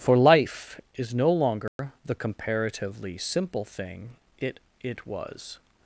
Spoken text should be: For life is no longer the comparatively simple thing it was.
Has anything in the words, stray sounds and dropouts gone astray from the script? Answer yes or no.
yes